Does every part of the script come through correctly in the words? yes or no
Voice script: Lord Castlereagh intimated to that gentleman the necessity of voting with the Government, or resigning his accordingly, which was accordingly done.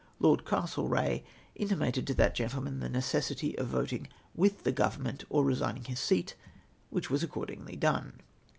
no